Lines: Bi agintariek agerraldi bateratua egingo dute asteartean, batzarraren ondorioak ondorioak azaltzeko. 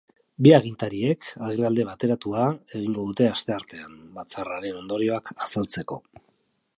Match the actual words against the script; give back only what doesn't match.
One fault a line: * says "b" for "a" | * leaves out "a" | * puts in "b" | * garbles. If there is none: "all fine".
* leaves out "ondorioak"